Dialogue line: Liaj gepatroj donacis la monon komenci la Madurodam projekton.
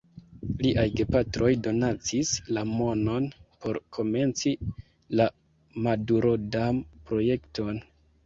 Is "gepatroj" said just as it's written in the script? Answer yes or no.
yes